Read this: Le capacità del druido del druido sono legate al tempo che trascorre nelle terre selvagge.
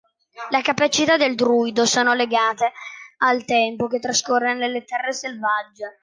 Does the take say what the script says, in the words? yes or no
no